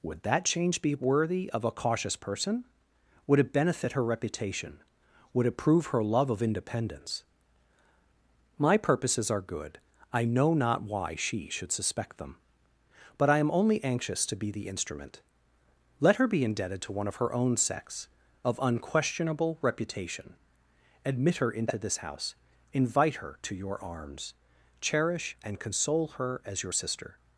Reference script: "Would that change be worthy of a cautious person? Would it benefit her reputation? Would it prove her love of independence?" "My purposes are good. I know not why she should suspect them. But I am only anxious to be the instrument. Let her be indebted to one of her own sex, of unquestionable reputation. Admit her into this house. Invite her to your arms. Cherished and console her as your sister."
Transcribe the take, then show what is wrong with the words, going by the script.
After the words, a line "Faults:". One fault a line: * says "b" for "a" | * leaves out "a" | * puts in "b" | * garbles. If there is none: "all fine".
"Would that change be worthy of a cautious person? Would it benefit her reputation? Would it prove her love of independence?" "My purposes are good. I know not why she should suspect them. But I am only anxious to be the instrument. Let her be indebted to one of her own sex, of unquestionable reputation. Admit her into this house. Invite her to your arms. Cherish and console her as your sister."
Faults:
* says "Cherish" for "Cherished"